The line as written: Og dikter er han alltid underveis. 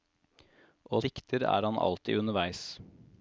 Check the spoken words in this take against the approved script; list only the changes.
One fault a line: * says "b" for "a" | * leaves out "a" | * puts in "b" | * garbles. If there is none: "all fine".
all fine